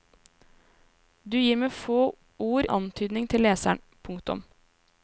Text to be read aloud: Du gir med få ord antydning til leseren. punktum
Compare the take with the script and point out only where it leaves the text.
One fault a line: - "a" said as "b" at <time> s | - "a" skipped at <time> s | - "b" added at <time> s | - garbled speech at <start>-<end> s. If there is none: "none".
none